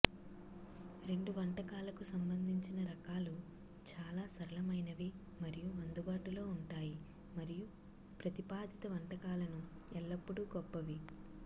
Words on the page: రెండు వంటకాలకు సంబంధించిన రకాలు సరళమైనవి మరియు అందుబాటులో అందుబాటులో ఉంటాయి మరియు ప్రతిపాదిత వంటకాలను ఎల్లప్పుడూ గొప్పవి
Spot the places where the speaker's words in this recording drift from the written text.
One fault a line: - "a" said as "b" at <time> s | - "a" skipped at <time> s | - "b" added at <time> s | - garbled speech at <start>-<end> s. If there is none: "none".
- "చాలా" added at 3.9 s
- "అందుబాటులో" skipped at 6.5 s